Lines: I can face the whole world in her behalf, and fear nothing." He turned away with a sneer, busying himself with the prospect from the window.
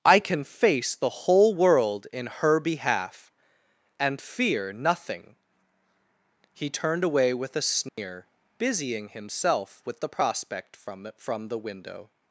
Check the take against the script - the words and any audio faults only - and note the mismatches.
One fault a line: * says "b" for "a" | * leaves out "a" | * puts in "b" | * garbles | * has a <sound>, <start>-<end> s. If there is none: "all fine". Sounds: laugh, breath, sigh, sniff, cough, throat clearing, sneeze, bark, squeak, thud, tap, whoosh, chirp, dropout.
* has a dropout, 7.9-8.0 s
* puts in "from"